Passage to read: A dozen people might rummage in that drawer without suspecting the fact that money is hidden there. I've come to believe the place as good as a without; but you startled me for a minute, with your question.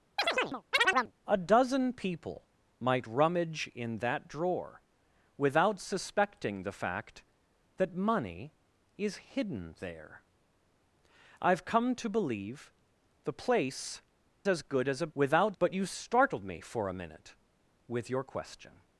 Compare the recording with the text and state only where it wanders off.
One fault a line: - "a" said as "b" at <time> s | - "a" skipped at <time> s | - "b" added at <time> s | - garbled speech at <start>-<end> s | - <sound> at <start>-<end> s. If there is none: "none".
- chirp at 0.2-1.1 s